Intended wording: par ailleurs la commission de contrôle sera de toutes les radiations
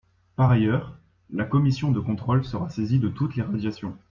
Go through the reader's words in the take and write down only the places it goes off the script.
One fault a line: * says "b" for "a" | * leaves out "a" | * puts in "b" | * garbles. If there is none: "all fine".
* puts in "saisie"